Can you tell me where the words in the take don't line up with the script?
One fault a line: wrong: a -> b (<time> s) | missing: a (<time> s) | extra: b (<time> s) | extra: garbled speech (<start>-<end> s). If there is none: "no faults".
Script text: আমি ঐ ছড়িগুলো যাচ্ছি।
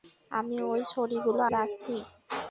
no faults